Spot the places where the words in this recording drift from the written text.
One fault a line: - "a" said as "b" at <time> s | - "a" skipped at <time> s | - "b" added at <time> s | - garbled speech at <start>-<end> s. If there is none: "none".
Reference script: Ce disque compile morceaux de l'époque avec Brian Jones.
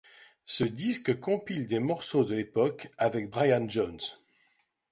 - "des" added at 1.7 s